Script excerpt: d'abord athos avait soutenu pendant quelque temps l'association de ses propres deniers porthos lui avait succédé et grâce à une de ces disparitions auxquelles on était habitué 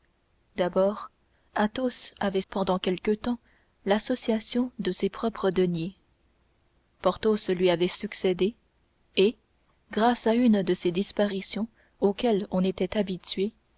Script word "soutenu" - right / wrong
wrong